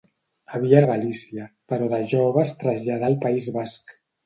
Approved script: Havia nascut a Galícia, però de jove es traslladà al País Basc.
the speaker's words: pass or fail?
fail